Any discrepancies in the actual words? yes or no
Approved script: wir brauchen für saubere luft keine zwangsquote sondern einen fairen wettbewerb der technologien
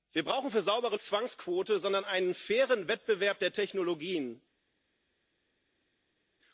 yes